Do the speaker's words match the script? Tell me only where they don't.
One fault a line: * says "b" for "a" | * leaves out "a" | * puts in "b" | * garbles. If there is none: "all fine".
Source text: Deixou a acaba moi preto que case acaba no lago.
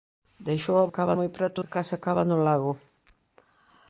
all fine